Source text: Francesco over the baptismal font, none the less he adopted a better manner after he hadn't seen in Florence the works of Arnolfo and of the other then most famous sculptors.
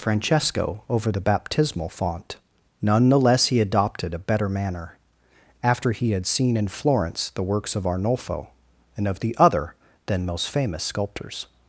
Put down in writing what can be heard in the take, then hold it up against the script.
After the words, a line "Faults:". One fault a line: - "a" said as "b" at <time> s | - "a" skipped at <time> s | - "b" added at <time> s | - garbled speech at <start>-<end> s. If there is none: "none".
Francesco over the baptismal font, none the less he adopted a better manner after he had seen in Florence the works of Arnolfo and of the other then most famous sculptors.
Faults:
- "hadn't" said as "had" at 6.1 s